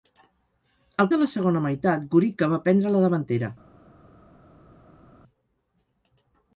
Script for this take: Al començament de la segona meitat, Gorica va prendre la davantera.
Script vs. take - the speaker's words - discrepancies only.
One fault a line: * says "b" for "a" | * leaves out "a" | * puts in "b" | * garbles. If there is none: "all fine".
* leaves out "començament"